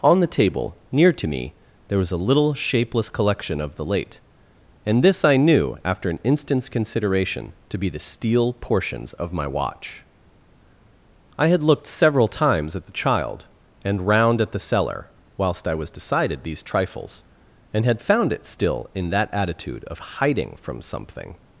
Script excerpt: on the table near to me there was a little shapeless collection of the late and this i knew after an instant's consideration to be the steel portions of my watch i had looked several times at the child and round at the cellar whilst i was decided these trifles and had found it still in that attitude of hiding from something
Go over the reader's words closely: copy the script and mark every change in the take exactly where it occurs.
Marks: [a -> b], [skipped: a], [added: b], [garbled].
on the table near to me there was a little shapeless collection of the late and this i knew after an instant's consideration to be the steel portions of my watch i had looked several times at the child and round at the cellar whilst i was decided these trifles and had found it still in that attitude of hiding from something